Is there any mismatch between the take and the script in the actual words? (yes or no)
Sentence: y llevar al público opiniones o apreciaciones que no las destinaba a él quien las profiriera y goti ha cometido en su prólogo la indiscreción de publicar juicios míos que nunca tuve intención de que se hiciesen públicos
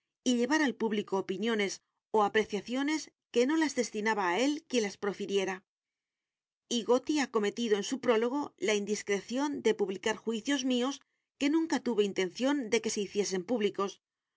no